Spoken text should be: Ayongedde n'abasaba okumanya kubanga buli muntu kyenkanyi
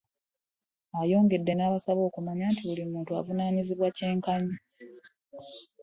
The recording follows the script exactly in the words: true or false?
false